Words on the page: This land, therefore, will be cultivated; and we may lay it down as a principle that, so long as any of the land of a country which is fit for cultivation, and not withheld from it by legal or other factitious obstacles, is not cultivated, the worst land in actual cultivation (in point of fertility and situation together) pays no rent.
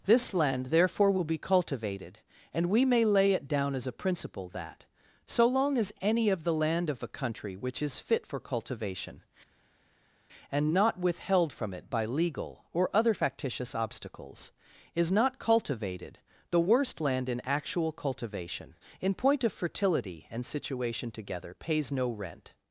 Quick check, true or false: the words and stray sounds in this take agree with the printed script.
true